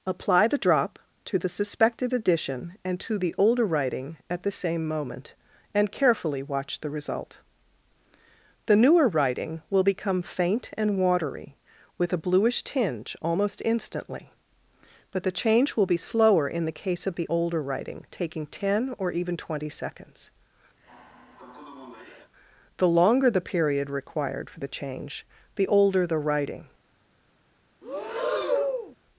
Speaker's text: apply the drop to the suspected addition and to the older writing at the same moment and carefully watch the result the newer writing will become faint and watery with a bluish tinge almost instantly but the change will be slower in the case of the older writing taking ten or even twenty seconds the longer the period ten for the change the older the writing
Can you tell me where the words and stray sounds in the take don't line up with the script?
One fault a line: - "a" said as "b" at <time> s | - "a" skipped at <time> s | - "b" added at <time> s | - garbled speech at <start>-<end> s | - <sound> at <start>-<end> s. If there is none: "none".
- sigh at 20.8-22.3 s
- "ten" said as "required" at 23.9 s
- breath at 27.8-29.0 s